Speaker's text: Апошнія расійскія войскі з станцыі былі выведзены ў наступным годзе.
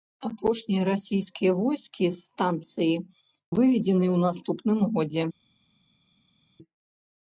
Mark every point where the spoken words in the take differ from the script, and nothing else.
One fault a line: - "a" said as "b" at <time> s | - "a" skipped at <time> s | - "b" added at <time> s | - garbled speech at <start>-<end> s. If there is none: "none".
- "былі" skipped at 3.0 s